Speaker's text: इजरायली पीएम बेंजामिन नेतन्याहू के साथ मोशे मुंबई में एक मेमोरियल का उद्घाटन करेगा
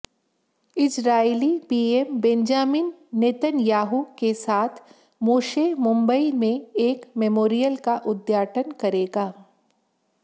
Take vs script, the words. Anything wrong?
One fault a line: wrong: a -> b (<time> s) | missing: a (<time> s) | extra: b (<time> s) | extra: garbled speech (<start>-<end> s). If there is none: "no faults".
no faults